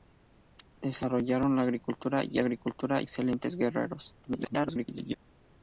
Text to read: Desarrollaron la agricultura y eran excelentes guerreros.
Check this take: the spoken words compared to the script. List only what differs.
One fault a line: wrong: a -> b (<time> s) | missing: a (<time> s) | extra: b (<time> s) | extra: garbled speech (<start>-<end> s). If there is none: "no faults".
wrong: eran -> agricultura (2.4 s)
extra: garbled speech (4.2-5.1 s)